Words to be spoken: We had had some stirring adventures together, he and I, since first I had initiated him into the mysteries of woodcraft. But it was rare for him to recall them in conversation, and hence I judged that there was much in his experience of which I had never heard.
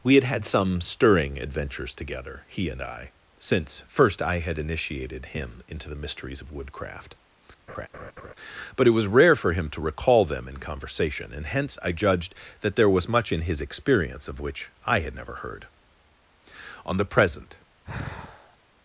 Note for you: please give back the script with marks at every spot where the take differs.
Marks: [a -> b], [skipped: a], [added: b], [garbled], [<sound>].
We had had some stirring adventures together, he and I, since first I had initiated him into the mysteries of woodcraft. [laugh] But it was rare for him to recall them in conversation, and hence I judged that there was much in his experience of which I had never heard. [added: On the present] [sigh]